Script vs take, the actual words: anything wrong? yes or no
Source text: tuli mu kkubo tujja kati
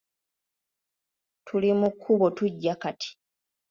no